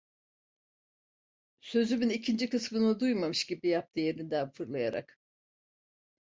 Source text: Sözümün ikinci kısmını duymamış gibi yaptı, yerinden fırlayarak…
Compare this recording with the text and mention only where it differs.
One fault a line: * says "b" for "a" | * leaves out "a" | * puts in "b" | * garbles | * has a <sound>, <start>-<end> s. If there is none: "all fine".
all fine